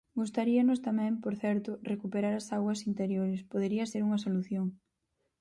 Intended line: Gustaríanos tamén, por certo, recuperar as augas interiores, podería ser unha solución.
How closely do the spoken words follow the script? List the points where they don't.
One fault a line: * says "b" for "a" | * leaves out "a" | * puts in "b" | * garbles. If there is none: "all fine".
all fine